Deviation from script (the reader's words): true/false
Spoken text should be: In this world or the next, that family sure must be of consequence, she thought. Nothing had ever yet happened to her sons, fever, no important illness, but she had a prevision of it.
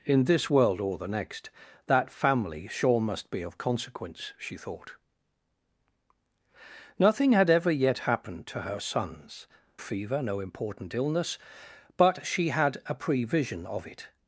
false